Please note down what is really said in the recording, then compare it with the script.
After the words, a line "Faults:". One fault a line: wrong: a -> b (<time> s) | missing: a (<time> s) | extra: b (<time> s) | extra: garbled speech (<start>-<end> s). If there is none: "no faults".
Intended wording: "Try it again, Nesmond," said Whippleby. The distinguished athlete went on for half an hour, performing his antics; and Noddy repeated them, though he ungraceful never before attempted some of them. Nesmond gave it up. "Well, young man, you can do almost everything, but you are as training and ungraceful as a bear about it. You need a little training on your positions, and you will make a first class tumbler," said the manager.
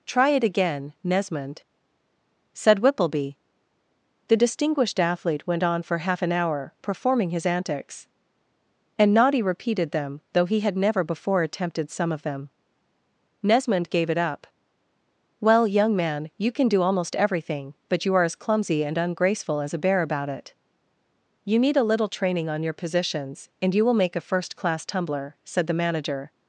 "Try it again, Nesmond," said Whippleby. The distinguished athlete went on for half an hour, performing his antics; and Noddy repeated them, though he had never before attempted some of them. Nesmond gave it up. "Well, young man, you can do almost everything, but you are as clumsy and ungraceful as a bear about it. You need a little training on your positions, and you will make a first class tumbler," said the manager.
Faults:
wrong: ungraceful -> had (10.6 s)
wrong: training -> clumsy (18.4 s)